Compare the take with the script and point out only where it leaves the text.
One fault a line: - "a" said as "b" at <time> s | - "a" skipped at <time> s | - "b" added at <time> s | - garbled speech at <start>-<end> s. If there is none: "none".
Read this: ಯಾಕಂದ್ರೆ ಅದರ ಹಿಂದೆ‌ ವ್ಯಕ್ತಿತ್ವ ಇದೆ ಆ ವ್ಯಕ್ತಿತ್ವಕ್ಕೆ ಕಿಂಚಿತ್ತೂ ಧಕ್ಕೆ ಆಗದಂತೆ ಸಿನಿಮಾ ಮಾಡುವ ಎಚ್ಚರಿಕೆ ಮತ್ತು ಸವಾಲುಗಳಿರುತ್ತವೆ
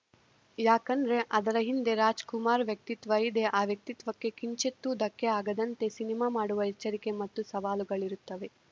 - "ರಾಜ್‌ಕುಮಾರ್" added at 1.9 s